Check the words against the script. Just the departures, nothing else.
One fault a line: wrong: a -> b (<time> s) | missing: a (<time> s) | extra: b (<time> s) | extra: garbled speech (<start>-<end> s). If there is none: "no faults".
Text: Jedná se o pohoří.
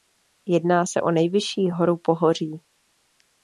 extra: nejvyšší horu (1.1 s)